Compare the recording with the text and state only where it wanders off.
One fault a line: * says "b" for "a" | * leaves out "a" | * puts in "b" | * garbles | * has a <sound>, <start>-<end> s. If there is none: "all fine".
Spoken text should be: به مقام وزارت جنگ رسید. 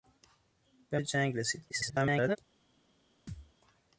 * leaves out "مقام وزارت"
* garbles
* has a thud, 3.3-3.5 s